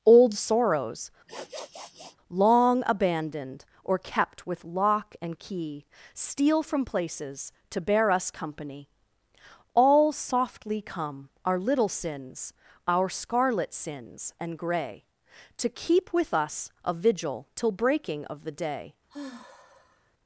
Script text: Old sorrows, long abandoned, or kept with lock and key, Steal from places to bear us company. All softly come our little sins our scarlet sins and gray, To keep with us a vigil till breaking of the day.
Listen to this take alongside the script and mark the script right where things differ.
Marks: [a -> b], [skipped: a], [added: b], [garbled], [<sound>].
Old sorrows, [sniff] long abandoned, or kept with lock and key, Steal from places to bear us company. All softly come our little sins our scarlet sins and gray, To keep with us a vigil till breaking of the day. [sigh]